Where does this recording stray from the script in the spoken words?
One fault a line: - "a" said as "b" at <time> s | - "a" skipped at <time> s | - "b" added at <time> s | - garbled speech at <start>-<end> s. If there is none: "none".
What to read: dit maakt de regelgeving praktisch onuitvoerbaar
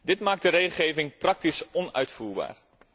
none